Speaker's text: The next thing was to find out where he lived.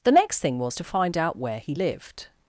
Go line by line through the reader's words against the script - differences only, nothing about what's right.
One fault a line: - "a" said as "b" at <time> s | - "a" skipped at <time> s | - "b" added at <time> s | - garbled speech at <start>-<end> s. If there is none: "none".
none